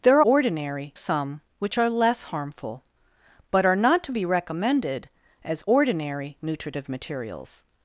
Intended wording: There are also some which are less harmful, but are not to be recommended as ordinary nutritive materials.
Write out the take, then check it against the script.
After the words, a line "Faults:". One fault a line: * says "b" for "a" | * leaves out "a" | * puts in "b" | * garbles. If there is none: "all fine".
There are ordinary some which are less harmful, but are not to be recommended as ordinary nutritive materials.
Faults:
* says "ordinary" for "also"